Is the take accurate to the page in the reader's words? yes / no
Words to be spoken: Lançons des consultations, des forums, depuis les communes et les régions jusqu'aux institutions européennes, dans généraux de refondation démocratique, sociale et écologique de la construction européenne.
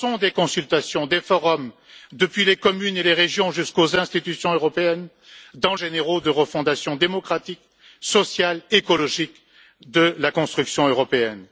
yes